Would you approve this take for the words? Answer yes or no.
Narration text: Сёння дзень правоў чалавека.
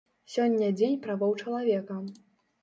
yes